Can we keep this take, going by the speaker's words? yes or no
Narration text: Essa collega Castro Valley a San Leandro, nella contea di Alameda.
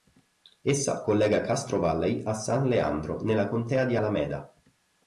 yes